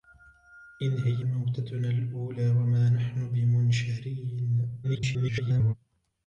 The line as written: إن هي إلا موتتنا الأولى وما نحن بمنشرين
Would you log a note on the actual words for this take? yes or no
yes